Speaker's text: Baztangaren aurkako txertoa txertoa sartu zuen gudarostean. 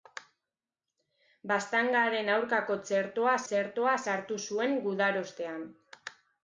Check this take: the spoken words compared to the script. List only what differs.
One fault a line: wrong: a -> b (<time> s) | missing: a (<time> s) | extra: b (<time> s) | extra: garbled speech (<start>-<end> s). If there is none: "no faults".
no faults